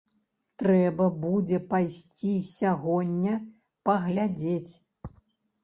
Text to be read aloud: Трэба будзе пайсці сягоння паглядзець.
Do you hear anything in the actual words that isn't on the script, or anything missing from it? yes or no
no